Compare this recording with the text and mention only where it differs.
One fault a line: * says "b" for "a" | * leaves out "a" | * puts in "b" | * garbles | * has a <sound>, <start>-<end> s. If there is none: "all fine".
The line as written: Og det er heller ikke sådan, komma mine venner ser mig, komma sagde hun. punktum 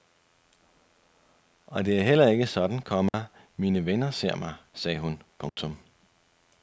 * has a dropout, 3.1-3.1 s
* leaves out "komma"
* has a dropout, 5.5-5.6 s